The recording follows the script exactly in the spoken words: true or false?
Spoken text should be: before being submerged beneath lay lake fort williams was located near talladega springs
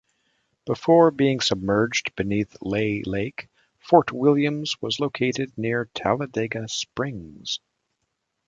true